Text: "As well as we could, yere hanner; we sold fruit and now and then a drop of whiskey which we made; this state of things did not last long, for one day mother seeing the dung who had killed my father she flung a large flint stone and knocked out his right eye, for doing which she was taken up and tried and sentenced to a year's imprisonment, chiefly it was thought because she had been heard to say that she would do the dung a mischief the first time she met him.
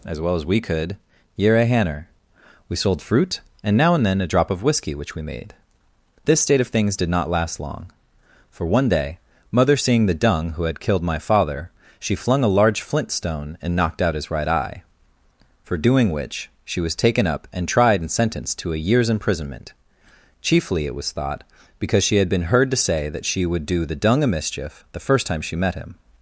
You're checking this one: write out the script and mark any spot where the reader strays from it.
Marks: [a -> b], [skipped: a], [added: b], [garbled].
"As well as we could, yere hanner; we sold fruit and now and then a drop of whiskey which we made; this state of things did not last long, for one day mother seeing the dung who had killed my father she flung a large flint stone and knocked out his right eye, for doing which she was taken up and tried and sentenced to a year's imprisonment, chiefly it was thought because she had been heard to say that she would do the dung a mischief the first time she met him.